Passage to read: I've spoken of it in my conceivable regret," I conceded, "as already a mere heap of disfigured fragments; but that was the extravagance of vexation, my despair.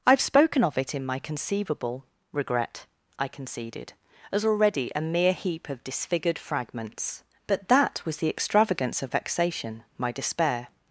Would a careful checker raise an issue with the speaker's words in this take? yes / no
no